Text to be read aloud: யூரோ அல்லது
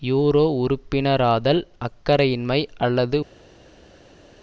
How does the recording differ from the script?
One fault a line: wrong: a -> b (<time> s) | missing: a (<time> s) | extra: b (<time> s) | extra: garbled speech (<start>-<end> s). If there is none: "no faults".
extra: உறுப்பினராதல் அக்கறையின்மை (0.6 s)